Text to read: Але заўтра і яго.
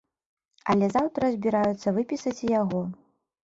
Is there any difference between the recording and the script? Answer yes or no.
yes